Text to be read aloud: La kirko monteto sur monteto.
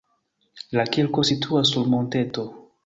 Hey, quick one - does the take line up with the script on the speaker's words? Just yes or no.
no